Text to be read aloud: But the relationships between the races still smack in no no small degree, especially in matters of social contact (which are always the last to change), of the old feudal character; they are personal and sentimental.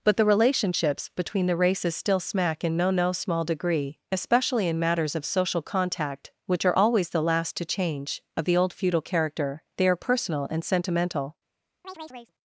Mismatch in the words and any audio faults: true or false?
true